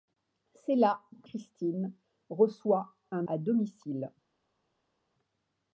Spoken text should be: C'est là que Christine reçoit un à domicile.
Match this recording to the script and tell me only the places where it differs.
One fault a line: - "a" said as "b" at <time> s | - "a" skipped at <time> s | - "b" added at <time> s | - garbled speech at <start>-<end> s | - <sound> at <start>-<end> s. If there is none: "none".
none